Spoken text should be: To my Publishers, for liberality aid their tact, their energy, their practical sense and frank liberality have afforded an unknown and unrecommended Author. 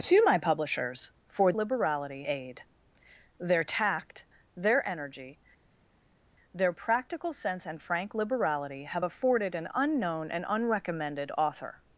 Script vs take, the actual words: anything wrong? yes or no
no